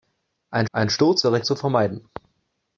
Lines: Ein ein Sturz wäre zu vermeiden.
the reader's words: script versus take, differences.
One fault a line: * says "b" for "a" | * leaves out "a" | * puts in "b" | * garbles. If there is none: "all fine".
all fine